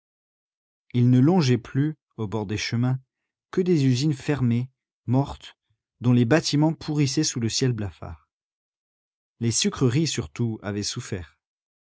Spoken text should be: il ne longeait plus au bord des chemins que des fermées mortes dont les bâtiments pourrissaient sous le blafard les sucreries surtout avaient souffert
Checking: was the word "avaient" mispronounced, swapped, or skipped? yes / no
no